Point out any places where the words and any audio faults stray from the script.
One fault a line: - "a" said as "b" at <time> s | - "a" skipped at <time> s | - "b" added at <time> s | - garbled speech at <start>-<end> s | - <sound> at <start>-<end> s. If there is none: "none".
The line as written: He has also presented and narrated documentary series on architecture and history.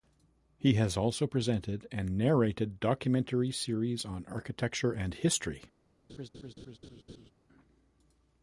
- laugh at 6.1-7.3 s